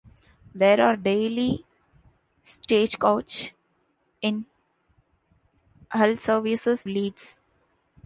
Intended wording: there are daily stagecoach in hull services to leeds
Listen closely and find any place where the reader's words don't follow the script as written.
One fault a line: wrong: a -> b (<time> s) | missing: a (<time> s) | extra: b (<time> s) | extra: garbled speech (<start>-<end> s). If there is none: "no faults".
missing: to (6.8 s)